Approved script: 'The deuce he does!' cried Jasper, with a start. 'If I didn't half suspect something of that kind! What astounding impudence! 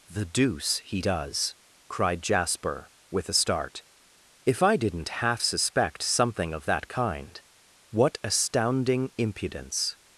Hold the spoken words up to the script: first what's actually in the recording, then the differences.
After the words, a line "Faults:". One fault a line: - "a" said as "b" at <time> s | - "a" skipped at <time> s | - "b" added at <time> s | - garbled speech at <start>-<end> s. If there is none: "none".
'The deuce he does!' cried Jasper, with a start. 'If I didn't half suspect something of that kind! What astounding impudence!
Faults:
none